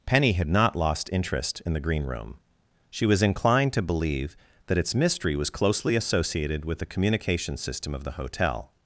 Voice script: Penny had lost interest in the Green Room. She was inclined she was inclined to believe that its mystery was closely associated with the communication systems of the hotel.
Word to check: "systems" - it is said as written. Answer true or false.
false